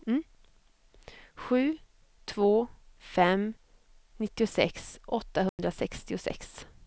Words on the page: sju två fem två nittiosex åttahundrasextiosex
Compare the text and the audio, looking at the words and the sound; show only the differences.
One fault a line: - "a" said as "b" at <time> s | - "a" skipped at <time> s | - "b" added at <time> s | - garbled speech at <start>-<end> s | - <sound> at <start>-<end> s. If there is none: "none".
- "två" skipped at 3.5 s
- dropout at 5.5-5.6 s